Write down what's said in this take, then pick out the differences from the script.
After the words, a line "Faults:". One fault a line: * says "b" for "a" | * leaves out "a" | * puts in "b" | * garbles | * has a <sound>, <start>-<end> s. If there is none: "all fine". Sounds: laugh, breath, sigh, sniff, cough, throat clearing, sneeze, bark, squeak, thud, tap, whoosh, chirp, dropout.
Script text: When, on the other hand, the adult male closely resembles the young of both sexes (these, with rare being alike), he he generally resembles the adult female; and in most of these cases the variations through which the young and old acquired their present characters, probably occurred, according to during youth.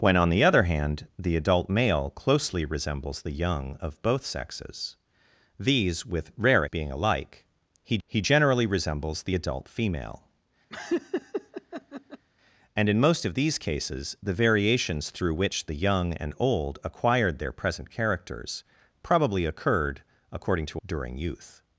When, on the other hand, the adult male closely resembles the young of both sexes (these, with rare being alike), he he generally resembles the adult female; and in most of these cases the variations through which the young and old acquired their present characters, probably occurred, according to during youth.
Faults:
* has a laugh, 10.7-12.3 s